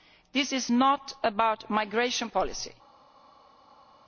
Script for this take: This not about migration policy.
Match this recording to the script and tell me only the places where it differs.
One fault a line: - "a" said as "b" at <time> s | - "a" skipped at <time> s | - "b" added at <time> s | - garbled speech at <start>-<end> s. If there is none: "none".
- "is" added at 0.5 s